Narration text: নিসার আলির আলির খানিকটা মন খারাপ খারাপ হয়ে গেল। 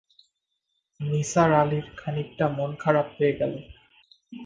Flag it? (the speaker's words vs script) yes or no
yes